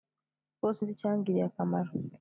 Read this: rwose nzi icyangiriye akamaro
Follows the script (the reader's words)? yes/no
yes